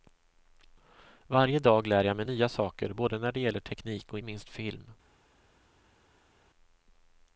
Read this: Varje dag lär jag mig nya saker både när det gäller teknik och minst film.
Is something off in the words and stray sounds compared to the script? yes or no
no